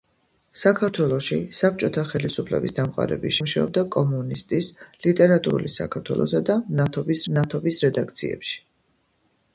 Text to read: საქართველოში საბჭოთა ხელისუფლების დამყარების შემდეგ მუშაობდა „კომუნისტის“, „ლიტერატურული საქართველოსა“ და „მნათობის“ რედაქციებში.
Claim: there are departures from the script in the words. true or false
true